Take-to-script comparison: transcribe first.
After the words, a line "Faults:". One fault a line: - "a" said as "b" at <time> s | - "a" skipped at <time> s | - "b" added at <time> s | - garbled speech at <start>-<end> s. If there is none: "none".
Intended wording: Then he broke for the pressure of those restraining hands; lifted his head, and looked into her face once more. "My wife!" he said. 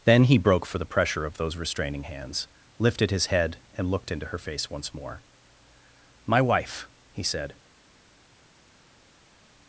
Then he broke for the pressure of those restraining hands; lifted his head, and looked into her face once more. "My wife!" he said.
Faults:
none